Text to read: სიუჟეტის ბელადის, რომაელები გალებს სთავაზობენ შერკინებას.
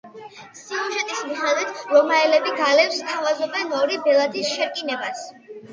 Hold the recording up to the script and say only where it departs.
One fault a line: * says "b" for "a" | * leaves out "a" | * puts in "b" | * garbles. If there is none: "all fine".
* says "მიხედვით" for "ბელადის"
* puts in "ორი ბელადის"